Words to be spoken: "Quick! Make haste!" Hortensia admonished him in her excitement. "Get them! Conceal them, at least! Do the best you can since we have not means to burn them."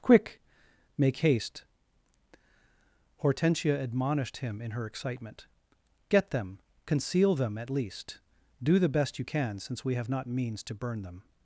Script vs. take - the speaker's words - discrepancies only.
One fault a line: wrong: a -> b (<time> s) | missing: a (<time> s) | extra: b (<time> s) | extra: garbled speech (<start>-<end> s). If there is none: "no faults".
no faults